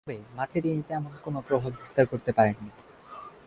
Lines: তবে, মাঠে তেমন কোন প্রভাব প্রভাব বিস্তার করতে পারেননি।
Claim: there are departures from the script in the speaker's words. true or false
true